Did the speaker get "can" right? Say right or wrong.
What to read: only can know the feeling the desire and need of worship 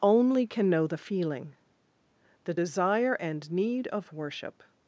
right